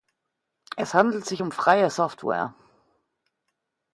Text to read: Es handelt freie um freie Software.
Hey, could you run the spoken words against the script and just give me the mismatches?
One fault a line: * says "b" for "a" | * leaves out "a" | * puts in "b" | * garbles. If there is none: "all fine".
* says "sich" for "freie"